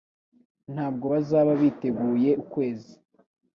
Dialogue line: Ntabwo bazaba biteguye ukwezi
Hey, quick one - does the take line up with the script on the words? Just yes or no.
yes